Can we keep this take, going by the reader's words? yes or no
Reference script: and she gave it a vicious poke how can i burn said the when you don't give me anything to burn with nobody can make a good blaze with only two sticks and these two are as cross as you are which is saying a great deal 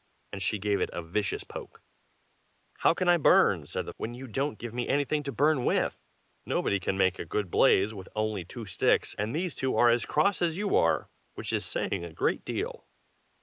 yes